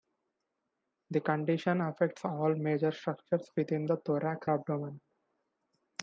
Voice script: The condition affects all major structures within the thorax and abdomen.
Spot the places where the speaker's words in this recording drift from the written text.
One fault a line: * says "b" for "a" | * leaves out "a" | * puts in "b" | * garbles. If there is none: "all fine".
* leaves out "and"